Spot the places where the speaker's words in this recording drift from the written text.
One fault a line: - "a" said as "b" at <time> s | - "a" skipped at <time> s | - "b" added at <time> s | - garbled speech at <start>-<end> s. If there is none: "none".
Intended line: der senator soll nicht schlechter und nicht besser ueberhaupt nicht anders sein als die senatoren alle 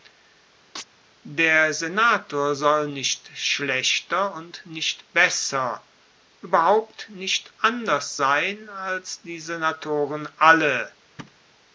none